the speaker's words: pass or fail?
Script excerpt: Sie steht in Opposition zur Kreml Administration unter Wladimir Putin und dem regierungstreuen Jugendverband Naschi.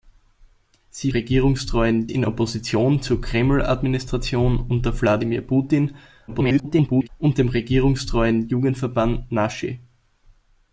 fail